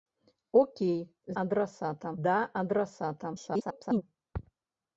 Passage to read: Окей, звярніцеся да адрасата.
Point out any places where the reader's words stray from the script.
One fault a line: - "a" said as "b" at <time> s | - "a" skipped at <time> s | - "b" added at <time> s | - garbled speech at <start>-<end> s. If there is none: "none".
- "звярніцеся" said as "адрасата" at 1.4 s
- garbled speech at 3.3-4.0 s